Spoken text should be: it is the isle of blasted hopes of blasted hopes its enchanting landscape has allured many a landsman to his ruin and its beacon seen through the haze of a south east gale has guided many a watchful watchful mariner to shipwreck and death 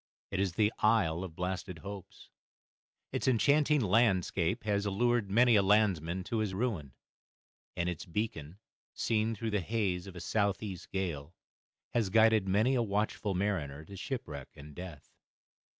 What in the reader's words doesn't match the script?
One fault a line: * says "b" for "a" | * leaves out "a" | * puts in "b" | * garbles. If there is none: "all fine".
* leaves out "of blasted hopes"
* leaves out "watchful"